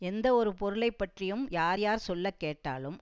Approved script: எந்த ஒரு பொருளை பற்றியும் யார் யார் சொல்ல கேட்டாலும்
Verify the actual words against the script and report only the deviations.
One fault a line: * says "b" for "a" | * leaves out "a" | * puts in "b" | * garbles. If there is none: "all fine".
all fine